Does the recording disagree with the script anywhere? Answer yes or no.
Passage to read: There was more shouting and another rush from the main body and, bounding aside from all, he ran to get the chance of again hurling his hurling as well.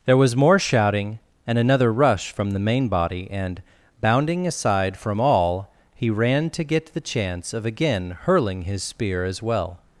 yes